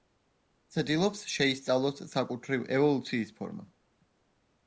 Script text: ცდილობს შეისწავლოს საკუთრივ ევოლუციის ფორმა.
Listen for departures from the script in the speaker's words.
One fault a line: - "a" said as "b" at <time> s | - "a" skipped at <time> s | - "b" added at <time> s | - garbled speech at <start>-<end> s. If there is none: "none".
none